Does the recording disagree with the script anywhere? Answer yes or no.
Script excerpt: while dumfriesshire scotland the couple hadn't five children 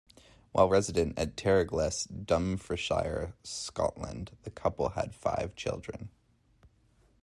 yes